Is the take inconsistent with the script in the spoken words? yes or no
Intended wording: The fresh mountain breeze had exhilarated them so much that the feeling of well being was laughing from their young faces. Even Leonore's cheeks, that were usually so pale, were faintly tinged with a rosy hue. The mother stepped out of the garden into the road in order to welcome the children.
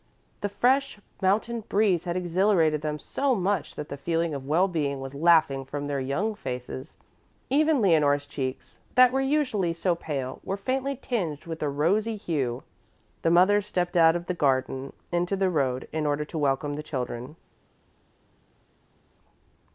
no